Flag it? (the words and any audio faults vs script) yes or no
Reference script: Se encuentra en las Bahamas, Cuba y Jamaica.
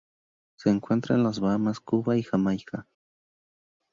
no